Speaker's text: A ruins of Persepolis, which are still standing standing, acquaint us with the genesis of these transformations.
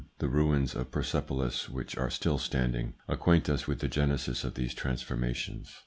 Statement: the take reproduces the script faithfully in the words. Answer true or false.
false